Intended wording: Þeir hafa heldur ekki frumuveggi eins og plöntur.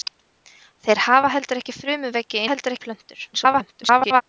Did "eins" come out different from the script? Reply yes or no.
yes